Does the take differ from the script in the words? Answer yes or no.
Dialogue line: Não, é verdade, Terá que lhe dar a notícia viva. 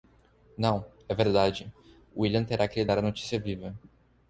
yes